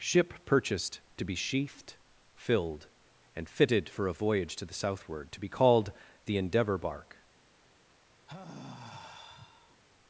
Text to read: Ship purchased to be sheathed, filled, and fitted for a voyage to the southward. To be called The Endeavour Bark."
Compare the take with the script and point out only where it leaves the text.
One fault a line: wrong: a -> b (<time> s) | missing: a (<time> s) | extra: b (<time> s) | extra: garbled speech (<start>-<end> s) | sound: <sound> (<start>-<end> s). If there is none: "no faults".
sound: sigh (8.3-9.8 s)